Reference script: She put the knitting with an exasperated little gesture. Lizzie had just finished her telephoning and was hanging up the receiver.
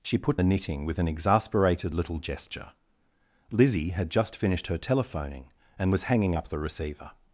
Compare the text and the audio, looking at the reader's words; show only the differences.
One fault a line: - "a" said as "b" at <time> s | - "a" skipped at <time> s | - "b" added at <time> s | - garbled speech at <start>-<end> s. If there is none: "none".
none